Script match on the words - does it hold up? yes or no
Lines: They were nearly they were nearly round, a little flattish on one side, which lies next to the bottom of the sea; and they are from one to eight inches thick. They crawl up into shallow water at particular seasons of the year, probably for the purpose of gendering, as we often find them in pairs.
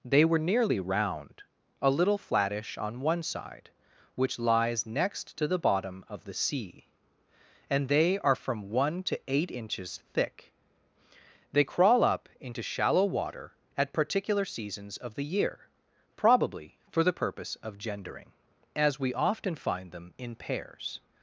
no